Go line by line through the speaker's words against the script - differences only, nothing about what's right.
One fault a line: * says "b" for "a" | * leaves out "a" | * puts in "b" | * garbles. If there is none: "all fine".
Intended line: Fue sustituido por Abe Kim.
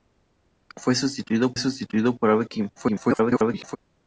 * puts in "sustituido"
* garbles